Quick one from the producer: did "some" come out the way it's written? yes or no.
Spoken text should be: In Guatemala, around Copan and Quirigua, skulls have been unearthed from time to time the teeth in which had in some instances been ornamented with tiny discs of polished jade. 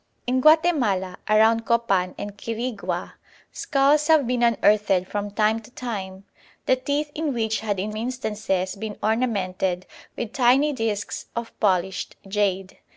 no